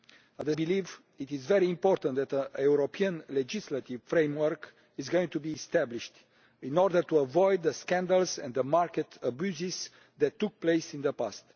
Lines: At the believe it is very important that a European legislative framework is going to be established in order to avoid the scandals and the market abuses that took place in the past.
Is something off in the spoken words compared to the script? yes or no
no